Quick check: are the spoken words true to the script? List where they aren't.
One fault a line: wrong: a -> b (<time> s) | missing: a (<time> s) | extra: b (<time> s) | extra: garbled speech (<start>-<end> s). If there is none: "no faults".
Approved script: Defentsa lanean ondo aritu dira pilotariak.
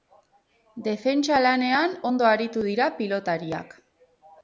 no faults